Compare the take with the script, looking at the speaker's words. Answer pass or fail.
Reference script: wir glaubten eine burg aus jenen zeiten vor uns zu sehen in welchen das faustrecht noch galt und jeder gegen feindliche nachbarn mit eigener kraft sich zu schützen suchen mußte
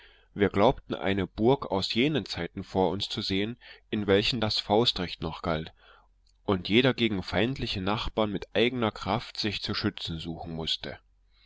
pass